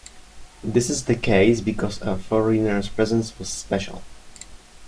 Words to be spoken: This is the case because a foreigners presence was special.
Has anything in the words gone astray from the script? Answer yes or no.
no